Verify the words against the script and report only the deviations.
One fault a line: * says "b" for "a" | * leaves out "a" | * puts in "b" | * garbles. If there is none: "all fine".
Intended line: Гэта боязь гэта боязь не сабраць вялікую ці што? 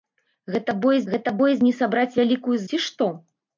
all fine